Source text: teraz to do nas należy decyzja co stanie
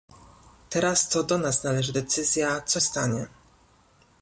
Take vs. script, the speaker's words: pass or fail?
pass